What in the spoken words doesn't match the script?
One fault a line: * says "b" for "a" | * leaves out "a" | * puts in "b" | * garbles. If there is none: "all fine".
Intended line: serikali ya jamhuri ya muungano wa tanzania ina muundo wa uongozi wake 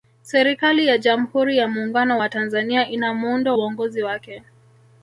* leaves out "wa"